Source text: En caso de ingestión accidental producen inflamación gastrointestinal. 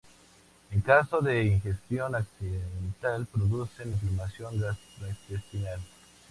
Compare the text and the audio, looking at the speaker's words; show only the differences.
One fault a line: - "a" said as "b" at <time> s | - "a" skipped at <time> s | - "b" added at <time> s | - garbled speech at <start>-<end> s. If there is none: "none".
none